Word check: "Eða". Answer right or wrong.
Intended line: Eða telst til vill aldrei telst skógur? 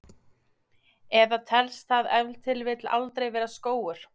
right